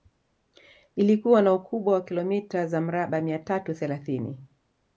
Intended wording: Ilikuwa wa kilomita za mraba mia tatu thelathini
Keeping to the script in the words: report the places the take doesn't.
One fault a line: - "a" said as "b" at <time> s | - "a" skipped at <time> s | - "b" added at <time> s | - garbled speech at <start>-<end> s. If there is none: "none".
- "na ukubwa" added at 1.4 s